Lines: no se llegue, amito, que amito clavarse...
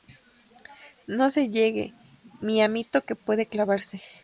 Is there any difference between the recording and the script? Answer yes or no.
yes